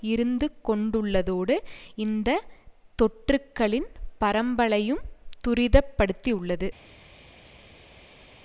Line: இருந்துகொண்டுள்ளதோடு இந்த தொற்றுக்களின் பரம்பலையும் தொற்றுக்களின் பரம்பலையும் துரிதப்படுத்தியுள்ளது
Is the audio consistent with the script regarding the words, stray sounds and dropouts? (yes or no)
no